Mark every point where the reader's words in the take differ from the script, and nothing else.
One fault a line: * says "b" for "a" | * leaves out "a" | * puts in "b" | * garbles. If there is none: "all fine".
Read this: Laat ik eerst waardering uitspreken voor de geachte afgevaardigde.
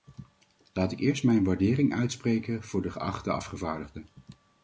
* puts in "mijn"